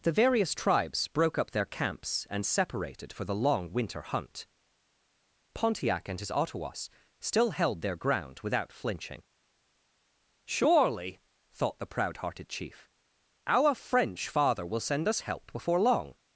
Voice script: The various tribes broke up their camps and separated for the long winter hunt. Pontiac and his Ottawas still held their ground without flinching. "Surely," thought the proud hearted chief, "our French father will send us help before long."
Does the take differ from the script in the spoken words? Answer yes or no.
no